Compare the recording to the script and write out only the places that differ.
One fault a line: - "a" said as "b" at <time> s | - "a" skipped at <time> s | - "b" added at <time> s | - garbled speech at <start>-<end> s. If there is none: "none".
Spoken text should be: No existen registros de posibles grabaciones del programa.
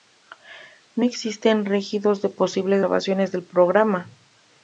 none